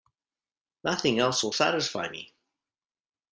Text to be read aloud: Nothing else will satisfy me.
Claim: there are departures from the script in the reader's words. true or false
false